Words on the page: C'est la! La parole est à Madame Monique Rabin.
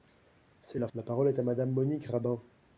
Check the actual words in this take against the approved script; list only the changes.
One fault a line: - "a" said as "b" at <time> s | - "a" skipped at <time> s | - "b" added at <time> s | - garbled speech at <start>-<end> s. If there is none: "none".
none